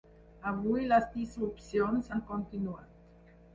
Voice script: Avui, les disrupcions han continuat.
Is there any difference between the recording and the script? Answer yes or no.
no